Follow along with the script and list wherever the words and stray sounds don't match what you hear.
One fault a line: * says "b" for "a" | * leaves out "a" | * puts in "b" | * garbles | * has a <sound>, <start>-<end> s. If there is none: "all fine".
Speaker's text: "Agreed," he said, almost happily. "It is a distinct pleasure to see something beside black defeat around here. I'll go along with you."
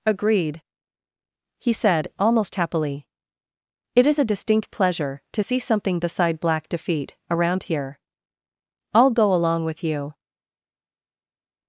all fine